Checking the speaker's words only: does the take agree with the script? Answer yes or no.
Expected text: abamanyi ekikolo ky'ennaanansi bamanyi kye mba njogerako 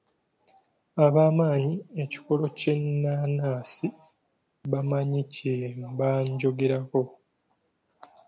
yes